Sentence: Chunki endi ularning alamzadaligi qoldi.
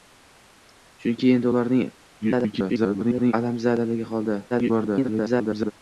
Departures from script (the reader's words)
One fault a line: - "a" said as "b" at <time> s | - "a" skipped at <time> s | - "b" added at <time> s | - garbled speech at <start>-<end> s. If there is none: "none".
- garbled speech at 2.2-3.3 s
- garbled speech at 4.5-5.7 s